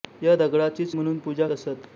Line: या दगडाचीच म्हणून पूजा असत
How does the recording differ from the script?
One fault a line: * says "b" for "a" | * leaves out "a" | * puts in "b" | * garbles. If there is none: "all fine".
all fine